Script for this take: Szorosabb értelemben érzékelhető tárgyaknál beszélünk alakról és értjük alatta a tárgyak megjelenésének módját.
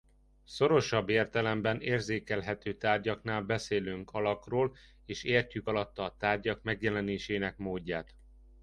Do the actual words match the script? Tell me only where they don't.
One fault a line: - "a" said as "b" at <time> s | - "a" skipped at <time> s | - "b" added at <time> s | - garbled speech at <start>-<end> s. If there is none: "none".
none